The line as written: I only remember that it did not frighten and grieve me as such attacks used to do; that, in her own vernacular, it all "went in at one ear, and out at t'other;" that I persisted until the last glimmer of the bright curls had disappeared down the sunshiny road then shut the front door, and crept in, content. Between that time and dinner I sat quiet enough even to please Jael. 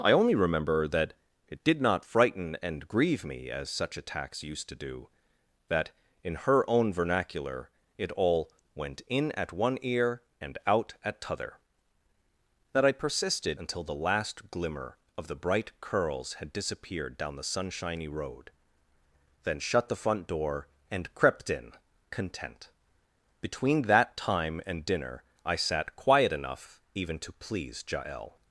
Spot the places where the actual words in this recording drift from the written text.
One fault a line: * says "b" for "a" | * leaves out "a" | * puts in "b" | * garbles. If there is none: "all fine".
all fine